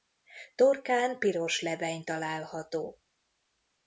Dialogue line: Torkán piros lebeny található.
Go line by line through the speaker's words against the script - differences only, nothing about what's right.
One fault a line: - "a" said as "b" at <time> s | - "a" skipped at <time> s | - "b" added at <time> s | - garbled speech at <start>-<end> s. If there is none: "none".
none